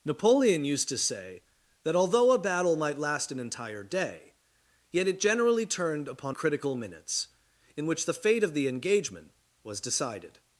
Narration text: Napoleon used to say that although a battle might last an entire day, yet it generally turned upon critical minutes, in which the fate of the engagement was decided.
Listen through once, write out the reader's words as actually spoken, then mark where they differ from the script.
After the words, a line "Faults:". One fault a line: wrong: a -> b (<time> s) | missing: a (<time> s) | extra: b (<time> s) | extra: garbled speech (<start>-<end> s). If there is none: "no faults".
Napoleon used to say that although a battle might last an entire day, yet it generally turned upon critical minutes, in which the fate of the engagement was decided.
Faults:
no faults